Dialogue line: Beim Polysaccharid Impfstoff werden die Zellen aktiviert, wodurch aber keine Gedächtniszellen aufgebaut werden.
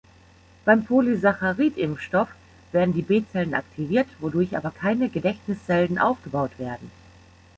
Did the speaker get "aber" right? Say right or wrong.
right